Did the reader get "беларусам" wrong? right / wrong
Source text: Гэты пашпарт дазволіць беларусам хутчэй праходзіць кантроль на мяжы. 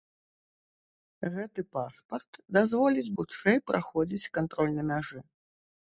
wrong